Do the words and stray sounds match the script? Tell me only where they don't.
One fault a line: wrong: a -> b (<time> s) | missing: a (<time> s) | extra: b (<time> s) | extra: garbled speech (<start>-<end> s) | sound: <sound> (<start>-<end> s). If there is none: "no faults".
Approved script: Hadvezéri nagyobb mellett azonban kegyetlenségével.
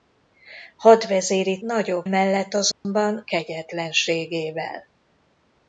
sound: dropout (2.7-2.9 s)